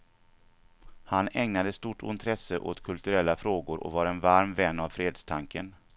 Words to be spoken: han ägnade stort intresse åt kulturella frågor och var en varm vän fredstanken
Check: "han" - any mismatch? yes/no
no